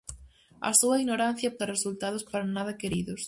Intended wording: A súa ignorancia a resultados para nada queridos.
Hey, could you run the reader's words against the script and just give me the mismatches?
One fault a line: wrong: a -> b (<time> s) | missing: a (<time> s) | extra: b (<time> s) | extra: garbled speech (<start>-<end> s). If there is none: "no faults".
no faults